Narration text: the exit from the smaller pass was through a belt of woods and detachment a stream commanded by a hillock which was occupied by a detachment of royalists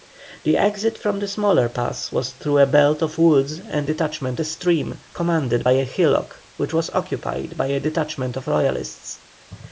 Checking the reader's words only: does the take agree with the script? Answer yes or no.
yes